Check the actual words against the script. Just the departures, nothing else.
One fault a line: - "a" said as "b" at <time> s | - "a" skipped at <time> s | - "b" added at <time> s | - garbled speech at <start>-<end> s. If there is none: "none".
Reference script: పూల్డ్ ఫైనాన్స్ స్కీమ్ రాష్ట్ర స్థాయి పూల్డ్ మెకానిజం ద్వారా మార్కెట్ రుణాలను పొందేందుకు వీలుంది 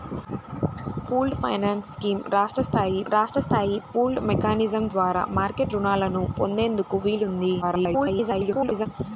- "రాష్ట్ర స్థాయి" added at 3.1 s
- garbled speech at 7.6-8.9 s